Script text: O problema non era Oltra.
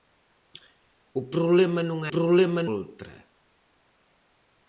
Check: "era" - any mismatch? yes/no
yes